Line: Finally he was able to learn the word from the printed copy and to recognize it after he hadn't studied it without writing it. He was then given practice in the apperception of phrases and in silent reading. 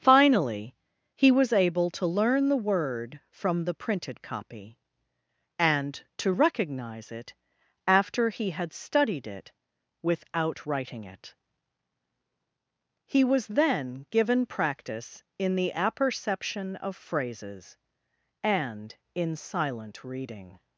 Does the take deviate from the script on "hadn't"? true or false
true